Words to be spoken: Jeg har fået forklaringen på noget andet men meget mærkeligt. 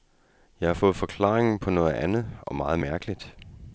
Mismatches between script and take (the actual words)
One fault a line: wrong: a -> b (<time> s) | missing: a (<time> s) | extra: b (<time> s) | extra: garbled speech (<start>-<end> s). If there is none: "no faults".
wrong: men -> og (2.4 s)